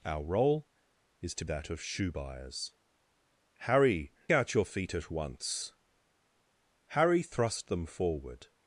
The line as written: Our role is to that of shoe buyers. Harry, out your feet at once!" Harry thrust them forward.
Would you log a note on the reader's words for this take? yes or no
no